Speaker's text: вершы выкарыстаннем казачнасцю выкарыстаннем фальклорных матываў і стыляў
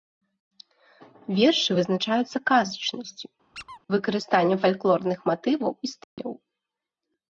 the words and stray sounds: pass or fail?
fail